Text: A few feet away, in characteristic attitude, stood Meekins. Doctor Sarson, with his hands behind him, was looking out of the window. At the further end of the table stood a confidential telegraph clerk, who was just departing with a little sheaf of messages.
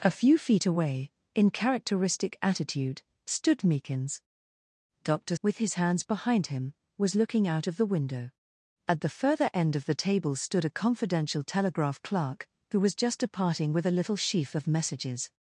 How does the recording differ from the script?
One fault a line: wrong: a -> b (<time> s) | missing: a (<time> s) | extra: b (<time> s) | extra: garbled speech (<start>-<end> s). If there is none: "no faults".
missing: Sarson (5.3 s)